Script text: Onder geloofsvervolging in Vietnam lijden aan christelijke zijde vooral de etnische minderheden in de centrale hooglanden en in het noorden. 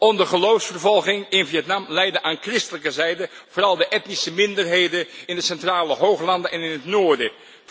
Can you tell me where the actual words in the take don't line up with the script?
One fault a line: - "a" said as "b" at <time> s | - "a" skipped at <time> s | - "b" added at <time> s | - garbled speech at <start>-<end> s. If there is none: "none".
none